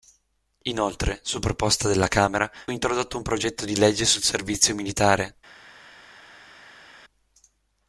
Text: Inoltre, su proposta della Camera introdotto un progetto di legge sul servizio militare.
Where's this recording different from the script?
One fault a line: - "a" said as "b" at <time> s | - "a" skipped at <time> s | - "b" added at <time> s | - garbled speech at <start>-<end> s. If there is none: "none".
none